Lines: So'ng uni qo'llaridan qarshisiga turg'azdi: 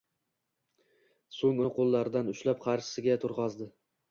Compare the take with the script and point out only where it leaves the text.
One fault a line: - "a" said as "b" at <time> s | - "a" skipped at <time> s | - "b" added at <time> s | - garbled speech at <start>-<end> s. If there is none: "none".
- "ushlab" added at 2.3 s